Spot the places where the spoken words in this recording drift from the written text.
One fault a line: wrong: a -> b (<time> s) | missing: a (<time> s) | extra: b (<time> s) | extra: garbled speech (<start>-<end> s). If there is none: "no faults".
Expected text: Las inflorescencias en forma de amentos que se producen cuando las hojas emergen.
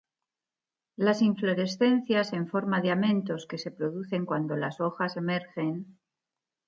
no faults